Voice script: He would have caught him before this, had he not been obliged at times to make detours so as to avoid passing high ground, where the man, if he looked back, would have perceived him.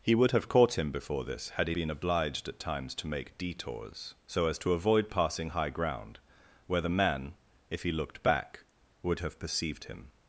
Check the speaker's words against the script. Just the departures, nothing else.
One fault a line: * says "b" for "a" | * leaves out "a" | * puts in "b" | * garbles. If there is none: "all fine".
* leaves out "not"